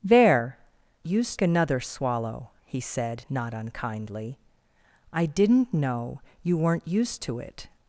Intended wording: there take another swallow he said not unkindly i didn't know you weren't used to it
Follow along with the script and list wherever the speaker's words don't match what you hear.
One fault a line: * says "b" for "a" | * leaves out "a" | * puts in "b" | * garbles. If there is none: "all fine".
* says "used" for "take"